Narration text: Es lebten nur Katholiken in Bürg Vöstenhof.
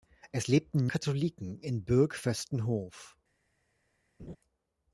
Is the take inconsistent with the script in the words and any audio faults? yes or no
yes